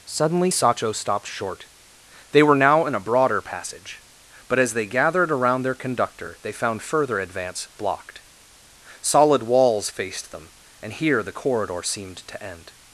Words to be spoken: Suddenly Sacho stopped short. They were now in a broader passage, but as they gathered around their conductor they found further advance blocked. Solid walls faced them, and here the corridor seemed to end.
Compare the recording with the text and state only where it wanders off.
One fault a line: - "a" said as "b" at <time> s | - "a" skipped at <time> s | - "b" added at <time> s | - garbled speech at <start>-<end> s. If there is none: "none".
none